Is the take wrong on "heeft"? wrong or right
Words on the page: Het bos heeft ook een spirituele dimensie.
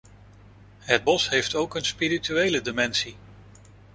right